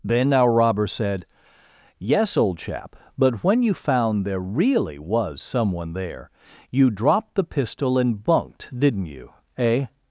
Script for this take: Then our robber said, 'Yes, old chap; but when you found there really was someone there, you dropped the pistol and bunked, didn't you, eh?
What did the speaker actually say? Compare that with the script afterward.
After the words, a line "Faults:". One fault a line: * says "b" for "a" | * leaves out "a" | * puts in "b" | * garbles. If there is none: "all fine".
Then our robber said, 'Yes, old chap; but when you found there really was someone there, you dropped the pistol and bunked, didn't you, eh?
Faults:
all fine